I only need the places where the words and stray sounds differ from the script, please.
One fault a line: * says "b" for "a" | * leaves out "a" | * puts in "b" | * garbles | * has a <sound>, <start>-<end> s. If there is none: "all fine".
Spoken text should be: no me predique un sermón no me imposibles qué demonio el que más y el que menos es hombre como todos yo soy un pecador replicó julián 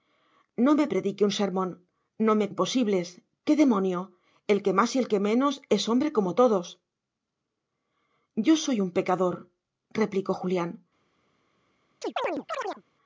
* has a chirp, 12.0-12.8 s